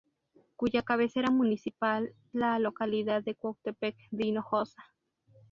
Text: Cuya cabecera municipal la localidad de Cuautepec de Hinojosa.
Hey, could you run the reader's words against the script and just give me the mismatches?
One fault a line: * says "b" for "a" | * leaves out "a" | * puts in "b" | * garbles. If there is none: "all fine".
all fine